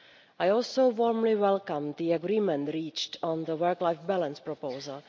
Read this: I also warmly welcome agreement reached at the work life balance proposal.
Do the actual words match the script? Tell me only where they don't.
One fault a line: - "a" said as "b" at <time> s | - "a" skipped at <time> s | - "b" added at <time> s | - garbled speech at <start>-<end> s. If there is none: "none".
- "the" added at 2.0 s
- "at" said as "on" at 3.2 s